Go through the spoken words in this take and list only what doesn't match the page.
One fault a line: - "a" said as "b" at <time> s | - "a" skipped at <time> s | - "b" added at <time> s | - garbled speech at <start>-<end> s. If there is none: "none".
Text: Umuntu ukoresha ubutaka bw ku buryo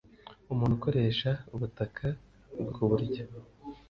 none